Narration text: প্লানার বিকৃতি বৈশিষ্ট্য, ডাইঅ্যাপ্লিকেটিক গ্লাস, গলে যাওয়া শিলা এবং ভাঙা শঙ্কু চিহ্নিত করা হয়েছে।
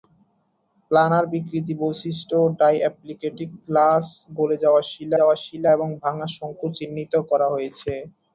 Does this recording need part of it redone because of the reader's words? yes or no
yes